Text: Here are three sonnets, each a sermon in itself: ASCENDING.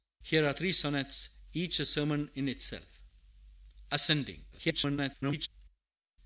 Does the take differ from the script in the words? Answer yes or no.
yes